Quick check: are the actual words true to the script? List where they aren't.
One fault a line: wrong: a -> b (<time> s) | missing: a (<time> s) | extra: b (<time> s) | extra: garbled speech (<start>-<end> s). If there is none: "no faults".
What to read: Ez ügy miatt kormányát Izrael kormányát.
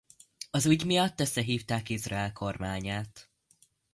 wrong: Ez -> Az (0.5 s)
wrong: kormányát -> összehívták (1.2 s)